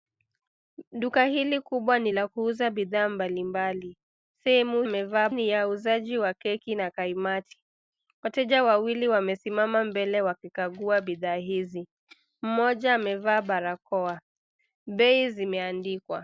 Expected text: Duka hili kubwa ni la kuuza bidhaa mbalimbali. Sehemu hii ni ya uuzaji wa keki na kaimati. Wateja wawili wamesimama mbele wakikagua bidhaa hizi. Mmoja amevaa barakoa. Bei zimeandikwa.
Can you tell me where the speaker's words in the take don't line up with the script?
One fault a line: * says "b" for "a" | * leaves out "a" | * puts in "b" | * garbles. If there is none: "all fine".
* says "amevaa" for "hii"